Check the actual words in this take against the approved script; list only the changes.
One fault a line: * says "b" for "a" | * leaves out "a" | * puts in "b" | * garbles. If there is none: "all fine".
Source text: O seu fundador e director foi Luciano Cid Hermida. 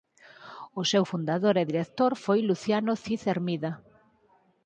all fine